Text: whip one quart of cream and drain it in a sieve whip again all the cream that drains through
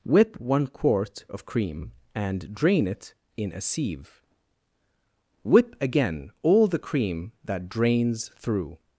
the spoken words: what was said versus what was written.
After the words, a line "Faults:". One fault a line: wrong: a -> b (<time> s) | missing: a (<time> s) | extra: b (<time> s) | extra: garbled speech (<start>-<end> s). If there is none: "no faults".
whip one quart of cream and drain it in a sieve whip again all the cream that drains through
Faults:
no faults